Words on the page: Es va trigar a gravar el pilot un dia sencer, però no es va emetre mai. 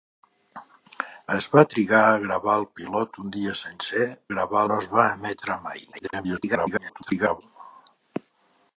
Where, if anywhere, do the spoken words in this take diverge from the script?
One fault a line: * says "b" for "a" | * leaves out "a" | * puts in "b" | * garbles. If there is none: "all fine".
* says "gravar" for "però"
* garbles